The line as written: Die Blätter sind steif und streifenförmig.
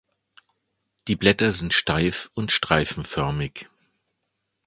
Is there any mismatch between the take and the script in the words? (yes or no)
no